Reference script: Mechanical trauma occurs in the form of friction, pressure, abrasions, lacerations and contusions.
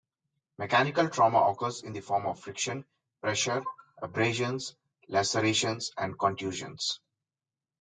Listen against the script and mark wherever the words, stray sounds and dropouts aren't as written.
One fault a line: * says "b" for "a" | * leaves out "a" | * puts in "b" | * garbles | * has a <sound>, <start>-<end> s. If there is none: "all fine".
all fine